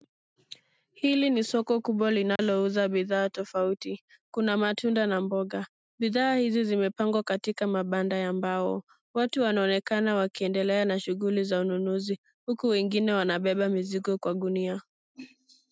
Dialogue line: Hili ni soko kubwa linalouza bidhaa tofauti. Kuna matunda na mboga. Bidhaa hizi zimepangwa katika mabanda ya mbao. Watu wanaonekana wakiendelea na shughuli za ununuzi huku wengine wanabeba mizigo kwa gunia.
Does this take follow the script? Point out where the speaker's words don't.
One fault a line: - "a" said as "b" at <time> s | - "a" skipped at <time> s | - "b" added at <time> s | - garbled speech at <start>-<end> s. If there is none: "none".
none